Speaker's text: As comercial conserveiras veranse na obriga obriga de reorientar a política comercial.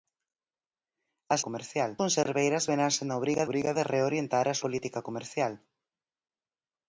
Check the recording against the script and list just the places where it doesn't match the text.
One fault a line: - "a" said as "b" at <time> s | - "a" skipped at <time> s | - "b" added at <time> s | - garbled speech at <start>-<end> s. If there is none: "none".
none